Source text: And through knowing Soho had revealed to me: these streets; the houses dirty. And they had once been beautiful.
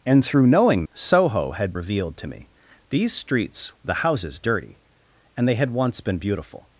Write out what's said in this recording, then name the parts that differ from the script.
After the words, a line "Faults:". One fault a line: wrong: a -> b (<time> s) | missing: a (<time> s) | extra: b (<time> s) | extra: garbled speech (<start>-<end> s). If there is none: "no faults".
And through knowing Soho had revealed to me: these streets; the houses dirty. And they had once been beautiful.
Faults:
no faults